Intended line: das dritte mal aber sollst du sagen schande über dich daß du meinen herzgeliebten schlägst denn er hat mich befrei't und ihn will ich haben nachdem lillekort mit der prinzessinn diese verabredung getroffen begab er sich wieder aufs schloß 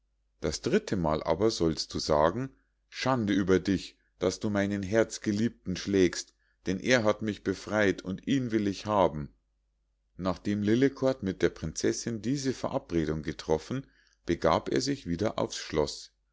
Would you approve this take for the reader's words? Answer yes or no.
yes